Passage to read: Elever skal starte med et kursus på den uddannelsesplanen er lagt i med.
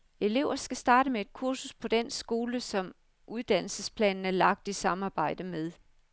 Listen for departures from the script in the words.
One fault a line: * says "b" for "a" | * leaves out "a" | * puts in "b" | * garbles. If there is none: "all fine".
* puts in "skole som"
* puts in "samarbejde"